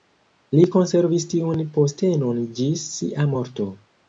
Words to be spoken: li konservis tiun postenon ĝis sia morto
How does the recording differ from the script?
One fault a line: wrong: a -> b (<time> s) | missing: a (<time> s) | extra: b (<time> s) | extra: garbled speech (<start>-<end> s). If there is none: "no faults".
no faults